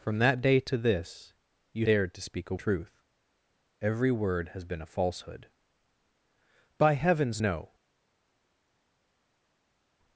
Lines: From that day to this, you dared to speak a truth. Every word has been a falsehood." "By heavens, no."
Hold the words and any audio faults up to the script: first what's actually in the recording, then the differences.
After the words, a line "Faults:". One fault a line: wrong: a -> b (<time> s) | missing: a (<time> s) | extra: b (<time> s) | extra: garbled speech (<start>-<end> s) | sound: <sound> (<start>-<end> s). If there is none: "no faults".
From that day to this, you dared to speak a truth. Every word has been a falsehood." "By heavens, no."
Faults:
no faults